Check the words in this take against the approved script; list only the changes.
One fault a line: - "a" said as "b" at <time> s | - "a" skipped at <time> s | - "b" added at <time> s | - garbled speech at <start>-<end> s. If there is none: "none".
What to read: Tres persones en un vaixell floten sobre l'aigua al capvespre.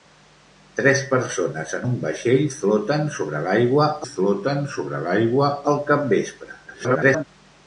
- "floten sobre l'aigua" added at 4.1 s
- garbled speech at 6.7-7.2 s